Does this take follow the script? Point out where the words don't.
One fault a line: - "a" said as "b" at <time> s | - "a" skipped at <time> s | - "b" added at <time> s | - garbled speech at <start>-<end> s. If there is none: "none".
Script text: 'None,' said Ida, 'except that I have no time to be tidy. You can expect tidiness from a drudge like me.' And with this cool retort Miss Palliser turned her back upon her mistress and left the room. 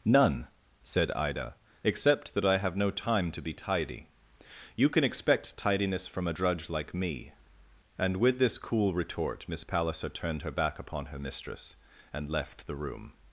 none